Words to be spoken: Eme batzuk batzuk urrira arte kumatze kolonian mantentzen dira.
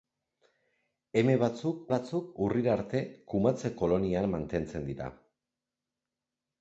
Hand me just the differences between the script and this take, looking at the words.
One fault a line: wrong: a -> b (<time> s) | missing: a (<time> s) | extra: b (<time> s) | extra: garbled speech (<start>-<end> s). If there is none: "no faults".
no faults